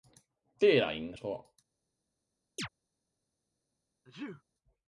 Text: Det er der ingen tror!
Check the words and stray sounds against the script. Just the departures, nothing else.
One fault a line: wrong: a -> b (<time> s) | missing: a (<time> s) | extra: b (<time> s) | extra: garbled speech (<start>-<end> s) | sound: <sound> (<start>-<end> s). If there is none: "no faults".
sound: chirp (2.6-2.7 s)
sound: sneeze (4.0-4.4 s)